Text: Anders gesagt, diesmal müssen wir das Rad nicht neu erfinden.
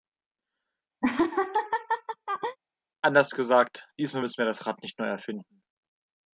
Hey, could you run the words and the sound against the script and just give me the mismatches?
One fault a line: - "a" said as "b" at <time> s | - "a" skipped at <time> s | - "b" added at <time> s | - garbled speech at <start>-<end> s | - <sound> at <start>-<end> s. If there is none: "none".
- laugh at 1.0-2.6 s